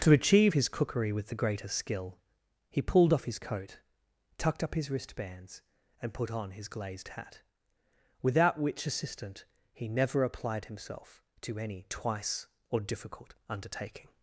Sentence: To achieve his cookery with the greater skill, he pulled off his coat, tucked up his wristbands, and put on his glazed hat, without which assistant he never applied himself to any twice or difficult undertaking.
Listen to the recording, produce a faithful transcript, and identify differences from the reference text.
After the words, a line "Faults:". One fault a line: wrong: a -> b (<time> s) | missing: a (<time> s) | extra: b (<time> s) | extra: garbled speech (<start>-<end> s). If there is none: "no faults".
To achieve his cookery with the greater skill, he pulled off his coat, tucked up his wristbands, and put on his glazed hat, without which assistant he never applied himself to any twice or difficult undertaking.
Faults:
no faults